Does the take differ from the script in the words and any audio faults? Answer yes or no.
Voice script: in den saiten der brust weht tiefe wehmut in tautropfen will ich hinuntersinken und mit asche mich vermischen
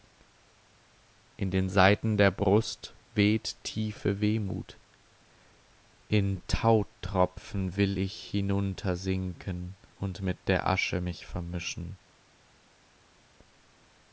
yes